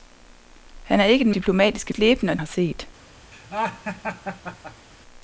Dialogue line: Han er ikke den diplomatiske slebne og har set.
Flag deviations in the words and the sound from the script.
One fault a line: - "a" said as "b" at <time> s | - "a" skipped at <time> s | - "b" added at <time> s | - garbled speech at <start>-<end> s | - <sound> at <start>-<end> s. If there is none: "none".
- laugh at 3.3-4.9 s